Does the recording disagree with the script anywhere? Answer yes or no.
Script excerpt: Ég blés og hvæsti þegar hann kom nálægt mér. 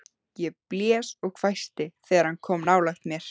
no